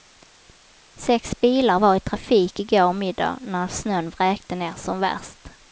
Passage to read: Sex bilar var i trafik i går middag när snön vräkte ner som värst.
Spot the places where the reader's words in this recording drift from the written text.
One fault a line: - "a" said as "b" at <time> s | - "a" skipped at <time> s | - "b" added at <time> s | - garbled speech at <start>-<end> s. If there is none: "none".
none